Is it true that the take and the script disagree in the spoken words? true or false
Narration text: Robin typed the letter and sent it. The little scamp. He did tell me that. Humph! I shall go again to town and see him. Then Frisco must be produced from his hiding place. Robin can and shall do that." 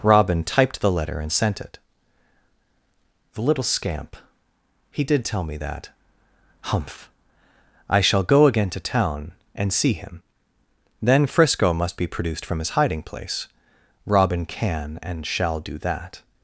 false